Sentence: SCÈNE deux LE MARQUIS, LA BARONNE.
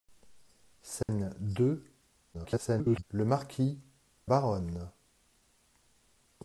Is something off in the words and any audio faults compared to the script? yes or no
yes